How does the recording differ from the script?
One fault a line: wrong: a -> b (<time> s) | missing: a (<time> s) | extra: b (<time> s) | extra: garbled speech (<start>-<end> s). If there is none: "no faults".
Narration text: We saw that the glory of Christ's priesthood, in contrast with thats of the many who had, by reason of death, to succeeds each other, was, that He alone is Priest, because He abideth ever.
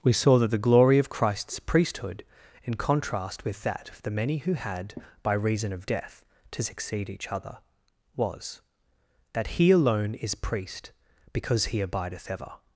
wrong: thats -> that (3.6 s)
wrong: succeeds -> succeed (6.6 s)